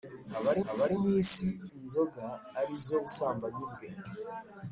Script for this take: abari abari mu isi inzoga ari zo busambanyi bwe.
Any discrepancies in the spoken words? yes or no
no